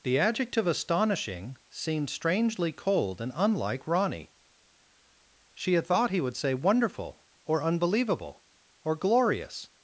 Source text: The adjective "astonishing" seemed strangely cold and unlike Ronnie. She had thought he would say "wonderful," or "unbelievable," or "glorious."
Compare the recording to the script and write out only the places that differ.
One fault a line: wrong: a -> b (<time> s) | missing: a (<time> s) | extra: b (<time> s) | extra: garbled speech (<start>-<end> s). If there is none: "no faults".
no faults